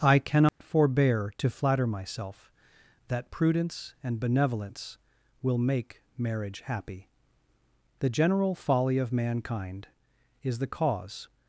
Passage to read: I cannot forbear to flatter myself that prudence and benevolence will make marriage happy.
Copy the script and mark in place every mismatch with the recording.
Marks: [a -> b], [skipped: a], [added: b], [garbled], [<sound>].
I cannot [dropout] forbear to flatter myself that prudence and benevolence will make marriage happy. [added: The general folly of mankind is the cause]